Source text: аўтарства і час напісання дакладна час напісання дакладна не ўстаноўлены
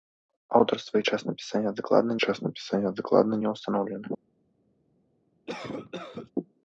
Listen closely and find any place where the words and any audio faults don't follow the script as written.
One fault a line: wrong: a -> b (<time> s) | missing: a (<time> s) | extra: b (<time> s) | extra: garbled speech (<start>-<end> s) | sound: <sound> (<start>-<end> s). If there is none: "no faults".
sound: cough (5.5-6.3 s)